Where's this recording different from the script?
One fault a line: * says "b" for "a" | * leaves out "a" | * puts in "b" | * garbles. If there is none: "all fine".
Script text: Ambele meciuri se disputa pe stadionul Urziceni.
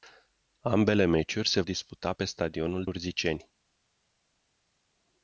all fine